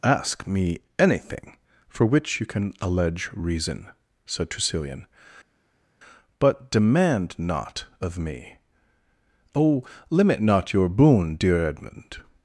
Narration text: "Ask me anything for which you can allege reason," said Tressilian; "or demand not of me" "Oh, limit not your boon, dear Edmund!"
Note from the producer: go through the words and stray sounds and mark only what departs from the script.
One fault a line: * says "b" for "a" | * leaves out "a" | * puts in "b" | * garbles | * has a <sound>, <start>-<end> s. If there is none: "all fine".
* says "but" for "or"